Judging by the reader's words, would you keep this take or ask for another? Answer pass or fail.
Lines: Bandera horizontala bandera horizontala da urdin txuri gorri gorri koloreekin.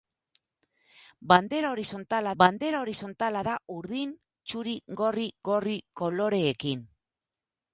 pass